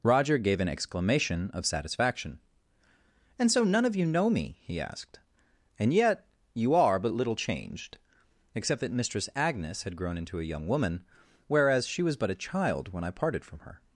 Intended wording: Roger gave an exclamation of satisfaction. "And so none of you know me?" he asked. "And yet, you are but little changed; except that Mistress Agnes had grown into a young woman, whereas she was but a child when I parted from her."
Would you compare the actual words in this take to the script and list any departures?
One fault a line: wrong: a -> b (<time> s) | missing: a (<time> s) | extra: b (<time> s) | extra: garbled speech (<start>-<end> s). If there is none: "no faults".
no faults